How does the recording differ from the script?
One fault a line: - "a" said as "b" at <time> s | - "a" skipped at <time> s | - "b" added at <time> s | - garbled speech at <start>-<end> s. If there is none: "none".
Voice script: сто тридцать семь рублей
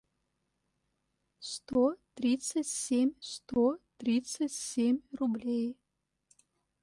- "сто тридцать семь" added at 3.3 s